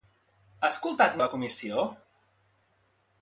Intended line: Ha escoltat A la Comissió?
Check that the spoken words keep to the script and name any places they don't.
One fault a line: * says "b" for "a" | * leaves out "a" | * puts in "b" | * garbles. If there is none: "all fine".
all fine